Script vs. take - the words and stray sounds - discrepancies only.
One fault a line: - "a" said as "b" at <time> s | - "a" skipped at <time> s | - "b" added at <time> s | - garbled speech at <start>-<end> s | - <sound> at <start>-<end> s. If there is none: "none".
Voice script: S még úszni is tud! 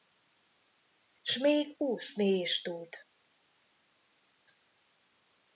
none